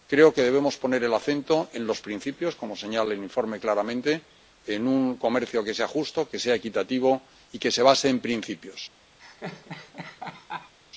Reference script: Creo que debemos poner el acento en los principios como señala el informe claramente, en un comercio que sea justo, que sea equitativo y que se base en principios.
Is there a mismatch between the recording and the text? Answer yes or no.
no